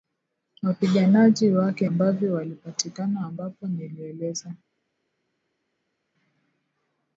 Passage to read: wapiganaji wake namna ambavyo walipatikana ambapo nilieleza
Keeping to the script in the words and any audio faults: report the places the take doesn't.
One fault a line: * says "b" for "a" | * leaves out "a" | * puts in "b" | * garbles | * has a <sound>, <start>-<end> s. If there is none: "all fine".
* leaves out "namna"